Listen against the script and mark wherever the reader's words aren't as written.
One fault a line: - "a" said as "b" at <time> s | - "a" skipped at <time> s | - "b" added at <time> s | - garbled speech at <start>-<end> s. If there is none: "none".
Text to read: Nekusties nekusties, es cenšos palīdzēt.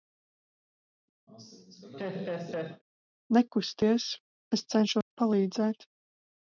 - "nekusties" skipped at 4.1 s